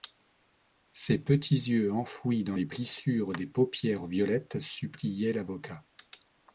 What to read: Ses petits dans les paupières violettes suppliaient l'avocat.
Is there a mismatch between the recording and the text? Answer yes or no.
yes